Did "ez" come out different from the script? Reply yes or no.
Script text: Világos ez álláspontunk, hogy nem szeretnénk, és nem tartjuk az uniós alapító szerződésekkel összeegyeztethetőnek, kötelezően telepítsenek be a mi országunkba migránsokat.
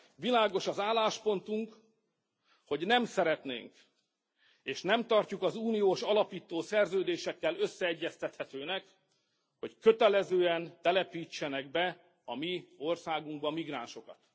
yes